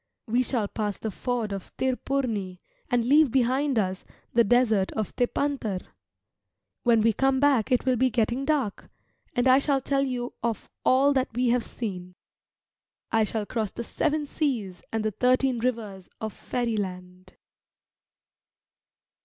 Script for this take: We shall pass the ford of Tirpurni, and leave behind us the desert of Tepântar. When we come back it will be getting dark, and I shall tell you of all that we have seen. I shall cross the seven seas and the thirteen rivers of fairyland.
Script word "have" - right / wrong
right